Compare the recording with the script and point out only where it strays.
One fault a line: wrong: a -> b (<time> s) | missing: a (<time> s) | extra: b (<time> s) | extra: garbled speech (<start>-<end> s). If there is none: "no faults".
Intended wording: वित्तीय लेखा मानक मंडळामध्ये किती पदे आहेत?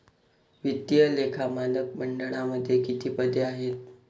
no faults